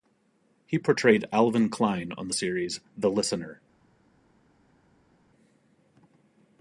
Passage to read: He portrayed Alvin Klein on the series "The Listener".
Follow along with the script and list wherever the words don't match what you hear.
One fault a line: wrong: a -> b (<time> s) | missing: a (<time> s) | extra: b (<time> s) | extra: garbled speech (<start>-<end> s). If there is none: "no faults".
no faults